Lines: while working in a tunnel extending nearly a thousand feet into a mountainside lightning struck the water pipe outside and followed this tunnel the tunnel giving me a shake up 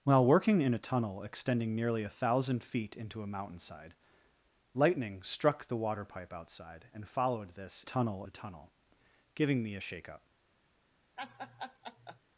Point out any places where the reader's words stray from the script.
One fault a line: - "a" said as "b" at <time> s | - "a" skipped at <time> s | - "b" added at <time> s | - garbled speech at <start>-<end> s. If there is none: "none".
none